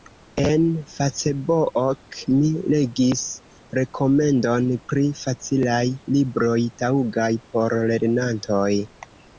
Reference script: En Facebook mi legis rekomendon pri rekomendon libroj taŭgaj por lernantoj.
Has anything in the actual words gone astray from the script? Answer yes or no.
yes